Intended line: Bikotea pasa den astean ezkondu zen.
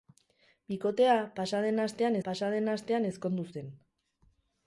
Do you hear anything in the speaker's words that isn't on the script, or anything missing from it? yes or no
yes